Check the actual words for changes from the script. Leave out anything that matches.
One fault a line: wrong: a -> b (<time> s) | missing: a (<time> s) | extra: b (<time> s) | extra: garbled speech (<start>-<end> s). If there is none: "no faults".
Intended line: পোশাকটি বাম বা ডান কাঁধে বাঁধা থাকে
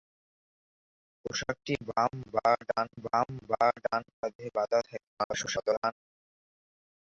extra: বাম বা ডান (3.0 s)
extra: garbled speech (5.2-5.9 s)